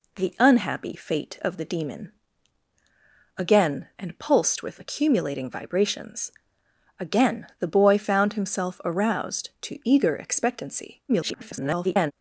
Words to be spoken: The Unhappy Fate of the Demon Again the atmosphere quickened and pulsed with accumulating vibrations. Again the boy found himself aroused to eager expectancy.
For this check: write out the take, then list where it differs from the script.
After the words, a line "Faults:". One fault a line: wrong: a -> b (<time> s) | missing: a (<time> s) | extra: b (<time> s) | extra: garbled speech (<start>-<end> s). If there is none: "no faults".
The Unhappy Fate of the Demon Again and pulsed with accumulating vibrations. Again the boy found himself aroused to eager expectancy. [garbled]
Faults:
missing: the atmosphere quickened (3.9 s)
extra: garbled speech (11.1-12.1 s)